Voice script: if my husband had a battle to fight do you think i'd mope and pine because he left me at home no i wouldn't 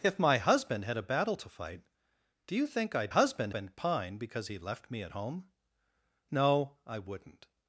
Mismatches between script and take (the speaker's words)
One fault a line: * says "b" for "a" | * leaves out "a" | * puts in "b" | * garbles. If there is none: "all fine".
* says "husband" for "mope"